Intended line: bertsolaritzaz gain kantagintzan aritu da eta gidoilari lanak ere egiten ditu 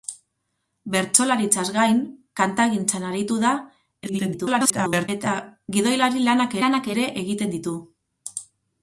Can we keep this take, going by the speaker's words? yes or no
no